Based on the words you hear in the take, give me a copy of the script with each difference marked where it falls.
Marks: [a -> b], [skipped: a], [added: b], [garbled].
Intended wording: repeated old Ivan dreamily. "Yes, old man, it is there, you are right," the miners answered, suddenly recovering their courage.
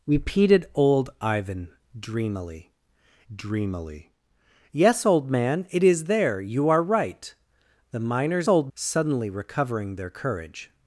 repeated old Ivan dreamily. [added: dreamily] "Yes, old man, it is there, you are right," the miners [answered, -> old] suddenly recovering their courage.